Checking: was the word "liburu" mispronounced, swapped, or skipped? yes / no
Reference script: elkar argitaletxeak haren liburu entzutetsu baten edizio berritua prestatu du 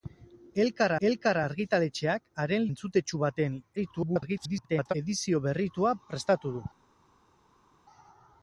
yes